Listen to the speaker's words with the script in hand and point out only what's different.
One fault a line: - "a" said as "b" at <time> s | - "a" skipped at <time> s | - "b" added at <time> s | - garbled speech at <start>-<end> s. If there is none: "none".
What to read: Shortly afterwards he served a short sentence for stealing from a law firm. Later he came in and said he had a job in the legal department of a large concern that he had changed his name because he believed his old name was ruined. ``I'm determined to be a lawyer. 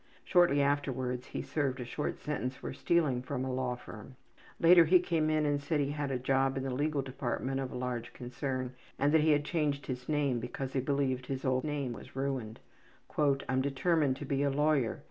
- "and" added at 9.0 s